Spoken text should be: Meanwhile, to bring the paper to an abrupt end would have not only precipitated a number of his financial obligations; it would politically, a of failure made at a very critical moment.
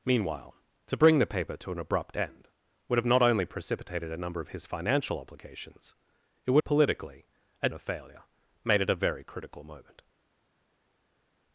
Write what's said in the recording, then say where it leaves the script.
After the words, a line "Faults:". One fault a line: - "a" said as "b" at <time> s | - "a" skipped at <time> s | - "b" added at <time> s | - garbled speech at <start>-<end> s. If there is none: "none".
Meanwhile, to bring the paper to an abrupt end would have not only precipitated a number of his financial obligations; it would politically, a of failure made at a very critical moment.
Faults:
none